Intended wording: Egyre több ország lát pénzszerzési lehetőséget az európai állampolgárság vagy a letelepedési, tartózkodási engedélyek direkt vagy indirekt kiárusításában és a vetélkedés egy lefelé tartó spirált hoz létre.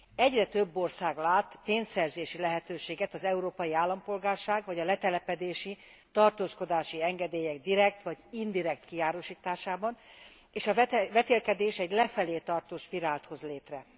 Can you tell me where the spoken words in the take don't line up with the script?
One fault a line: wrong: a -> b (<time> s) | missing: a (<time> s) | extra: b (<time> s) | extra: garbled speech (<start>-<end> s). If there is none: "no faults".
no faults